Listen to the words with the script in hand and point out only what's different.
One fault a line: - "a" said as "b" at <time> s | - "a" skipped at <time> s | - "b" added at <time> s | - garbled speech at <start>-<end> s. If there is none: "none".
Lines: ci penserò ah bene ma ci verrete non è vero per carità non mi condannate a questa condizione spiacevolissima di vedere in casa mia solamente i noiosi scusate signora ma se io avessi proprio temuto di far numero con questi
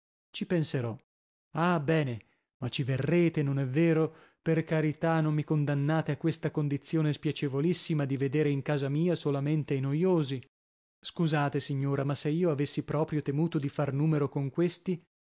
none